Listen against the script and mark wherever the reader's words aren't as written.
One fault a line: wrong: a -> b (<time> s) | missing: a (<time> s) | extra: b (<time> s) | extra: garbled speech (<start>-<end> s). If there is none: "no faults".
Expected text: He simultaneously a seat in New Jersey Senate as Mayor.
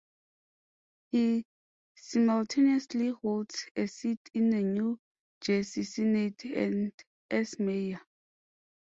extra: holds (3.1 s)
extra: the (4.5 s)
extra: and (6.4 s)